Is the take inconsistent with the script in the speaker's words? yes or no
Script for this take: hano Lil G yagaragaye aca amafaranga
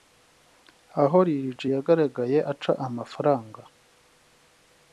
yes